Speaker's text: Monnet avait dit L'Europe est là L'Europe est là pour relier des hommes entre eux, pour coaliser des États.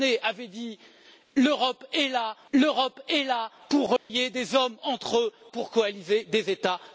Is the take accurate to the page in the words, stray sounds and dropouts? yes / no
no